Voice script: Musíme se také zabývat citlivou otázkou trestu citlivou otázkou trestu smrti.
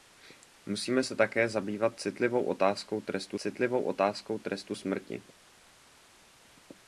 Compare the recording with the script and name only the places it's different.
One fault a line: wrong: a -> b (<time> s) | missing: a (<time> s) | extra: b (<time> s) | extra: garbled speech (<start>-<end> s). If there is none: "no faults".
no faults